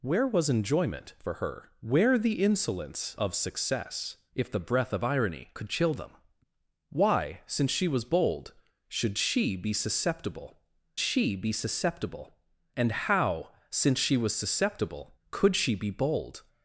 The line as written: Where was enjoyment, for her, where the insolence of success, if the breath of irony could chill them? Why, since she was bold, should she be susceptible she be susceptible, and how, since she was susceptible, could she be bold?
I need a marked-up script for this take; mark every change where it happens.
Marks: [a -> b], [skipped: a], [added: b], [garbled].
Where was enjoyment, for her, where the insolence of success, if the breath of irony could chill them? Why, since she was bold, should she be susceptible she be susceptible, and how, since she was susceptible, could she be bold?